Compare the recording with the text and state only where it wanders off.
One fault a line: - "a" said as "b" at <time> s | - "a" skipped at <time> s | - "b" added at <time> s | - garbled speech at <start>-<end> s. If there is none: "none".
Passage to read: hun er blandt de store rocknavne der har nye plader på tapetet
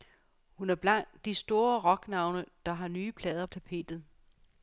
- "på" skipped at 3.5 s